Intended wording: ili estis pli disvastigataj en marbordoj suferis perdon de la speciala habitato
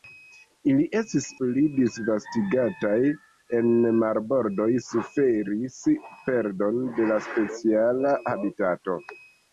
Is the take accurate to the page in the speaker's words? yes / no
yes